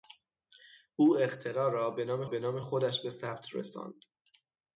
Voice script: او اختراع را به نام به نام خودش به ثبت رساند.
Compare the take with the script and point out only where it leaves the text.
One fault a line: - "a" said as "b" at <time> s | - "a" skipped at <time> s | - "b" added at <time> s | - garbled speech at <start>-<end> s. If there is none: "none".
none